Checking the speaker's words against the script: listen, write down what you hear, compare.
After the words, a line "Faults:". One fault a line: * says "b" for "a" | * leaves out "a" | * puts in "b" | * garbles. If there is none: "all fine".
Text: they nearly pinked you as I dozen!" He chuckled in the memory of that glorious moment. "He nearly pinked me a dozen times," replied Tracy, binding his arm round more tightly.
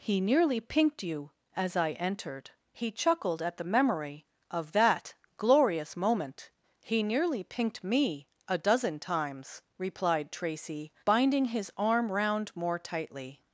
he nearly pinked you as I entered!" He chuckled at the memory of that glorious moment. "He nearly pinked me a dozen times," replied Tracy, binding his arm round more tightly.
Faults:
* says "he" for "they"
* says "entered" for "dozen"
* says "at" for "in"